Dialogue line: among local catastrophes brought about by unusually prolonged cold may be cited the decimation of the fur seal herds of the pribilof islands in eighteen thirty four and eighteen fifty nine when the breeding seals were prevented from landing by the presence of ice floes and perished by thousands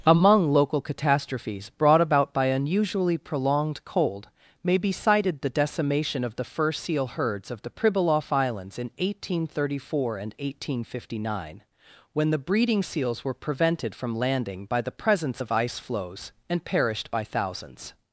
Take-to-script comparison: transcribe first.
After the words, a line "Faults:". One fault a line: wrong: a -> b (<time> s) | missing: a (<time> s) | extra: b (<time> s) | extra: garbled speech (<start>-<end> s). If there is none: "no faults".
among local catastrophes brought about by unusually prolonged cold may be cited the decimation of the fur seal herds of the pribilof islands in eighteen thirty four and eighteen fifty nine when the breeding seals were prevented from landing by the presence of ice floes and perished by thousands
Faults:
no faults